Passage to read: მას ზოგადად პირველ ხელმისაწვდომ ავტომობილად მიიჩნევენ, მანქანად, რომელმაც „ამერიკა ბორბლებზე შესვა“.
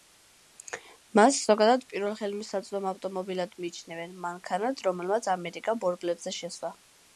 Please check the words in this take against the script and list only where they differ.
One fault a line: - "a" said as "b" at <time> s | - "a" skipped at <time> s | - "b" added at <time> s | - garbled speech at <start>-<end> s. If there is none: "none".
none